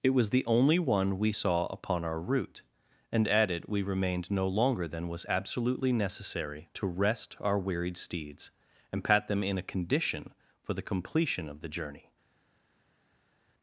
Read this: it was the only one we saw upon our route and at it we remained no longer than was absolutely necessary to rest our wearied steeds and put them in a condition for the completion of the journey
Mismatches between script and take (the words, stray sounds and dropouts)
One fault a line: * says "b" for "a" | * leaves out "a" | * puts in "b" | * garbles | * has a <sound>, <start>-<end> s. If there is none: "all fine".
* says "pat" for "put"